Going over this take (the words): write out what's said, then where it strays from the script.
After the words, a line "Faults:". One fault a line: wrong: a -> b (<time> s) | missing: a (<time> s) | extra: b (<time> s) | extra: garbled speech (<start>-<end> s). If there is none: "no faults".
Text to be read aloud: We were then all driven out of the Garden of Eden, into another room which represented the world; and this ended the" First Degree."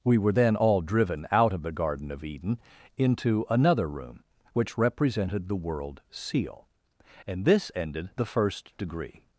We were then all driven out of the Garden of Eden, into another room which represented the world; seal and this ended the" First Degree."
Faults:
extra: seal (6.1 s)